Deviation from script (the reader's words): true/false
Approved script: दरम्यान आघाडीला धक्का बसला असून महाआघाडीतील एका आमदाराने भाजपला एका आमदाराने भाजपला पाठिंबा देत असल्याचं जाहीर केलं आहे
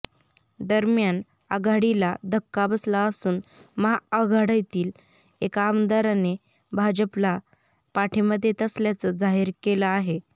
true